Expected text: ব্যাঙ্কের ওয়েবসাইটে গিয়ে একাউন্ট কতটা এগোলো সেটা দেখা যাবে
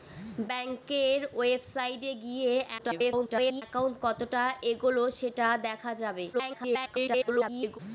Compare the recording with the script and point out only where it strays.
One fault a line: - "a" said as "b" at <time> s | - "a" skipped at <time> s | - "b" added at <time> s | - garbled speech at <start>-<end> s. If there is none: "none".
- garbled speech at 2.8-3.6 s
- garbled speech at 6.3-7.8 s